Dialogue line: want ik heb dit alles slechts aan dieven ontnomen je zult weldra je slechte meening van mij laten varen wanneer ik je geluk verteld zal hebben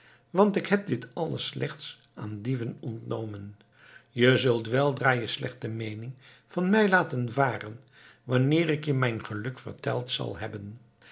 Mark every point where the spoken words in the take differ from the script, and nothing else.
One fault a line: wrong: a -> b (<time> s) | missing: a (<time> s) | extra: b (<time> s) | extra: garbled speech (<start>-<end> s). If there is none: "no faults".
extra: mijn (8.9 s)